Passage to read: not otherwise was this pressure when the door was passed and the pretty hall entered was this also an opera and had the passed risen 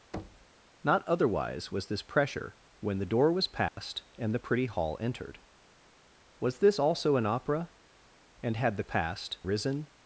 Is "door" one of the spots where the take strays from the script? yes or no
no